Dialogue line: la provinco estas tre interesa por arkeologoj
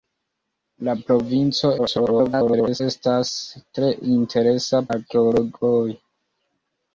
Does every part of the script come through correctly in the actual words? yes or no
no